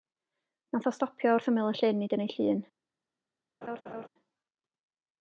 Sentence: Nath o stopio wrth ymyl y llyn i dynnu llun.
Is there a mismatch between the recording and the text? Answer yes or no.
no